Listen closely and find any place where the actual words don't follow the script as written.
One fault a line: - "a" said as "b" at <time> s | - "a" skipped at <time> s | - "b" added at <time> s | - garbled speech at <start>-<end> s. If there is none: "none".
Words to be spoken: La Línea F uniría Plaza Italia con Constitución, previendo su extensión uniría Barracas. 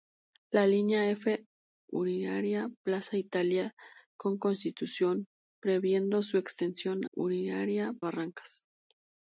none